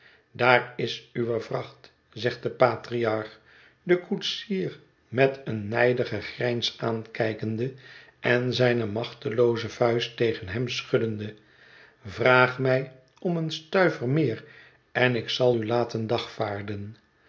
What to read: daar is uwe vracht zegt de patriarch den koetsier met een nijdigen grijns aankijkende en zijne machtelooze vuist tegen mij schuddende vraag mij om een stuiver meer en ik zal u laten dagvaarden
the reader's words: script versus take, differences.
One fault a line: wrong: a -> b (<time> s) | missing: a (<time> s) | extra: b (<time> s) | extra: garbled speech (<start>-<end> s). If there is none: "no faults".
wrong: mij -> hem (10.5 s)